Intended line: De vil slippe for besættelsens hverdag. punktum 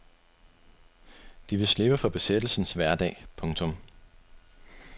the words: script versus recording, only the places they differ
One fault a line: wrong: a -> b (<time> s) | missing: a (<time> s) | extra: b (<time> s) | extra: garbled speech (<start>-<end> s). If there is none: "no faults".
no faults